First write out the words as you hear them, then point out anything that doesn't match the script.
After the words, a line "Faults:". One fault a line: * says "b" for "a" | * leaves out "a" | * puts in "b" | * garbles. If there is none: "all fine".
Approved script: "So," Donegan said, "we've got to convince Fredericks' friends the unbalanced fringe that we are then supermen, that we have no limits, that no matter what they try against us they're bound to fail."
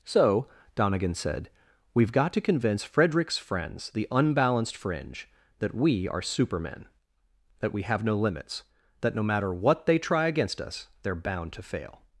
"So," Donegan said, "we've got to convince Fredericks' friends the unbalanced fringe that we are supermen, that we have no limits, that no matter what they try against us they're bound to fail."
Faults:
* leaves out "then"